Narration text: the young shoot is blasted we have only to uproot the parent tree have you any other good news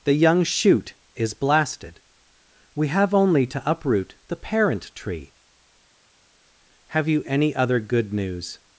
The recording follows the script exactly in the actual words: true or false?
true